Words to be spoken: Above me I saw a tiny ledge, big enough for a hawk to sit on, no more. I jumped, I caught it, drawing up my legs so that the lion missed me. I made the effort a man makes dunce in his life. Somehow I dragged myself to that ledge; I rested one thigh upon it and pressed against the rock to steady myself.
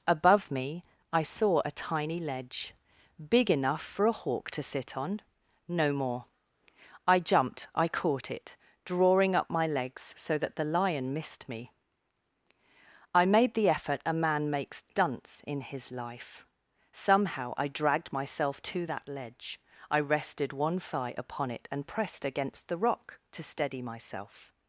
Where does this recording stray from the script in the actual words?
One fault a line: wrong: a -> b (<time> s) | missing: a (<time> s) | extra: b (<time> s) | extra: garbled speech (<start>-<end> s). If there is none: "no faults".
no faults